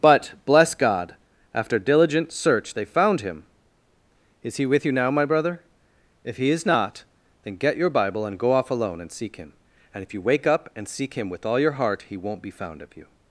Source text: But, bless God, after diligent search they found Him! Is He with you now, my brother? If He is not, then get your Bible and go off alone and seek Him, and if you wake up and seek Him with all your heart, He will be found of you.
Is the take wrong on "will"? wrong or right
wrong